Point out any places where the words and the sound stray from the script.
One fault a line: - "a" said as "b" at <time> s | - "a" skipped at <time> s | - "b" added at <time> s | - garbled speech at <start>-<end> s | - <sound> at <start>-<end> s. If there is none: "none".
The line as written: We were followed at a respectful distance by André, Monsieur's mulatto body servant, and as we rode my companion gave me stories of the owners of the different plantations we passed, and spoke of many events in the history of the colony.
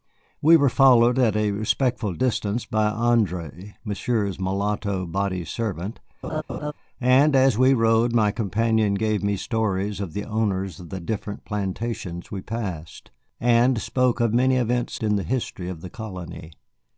- laugh at 6.2-6.7 s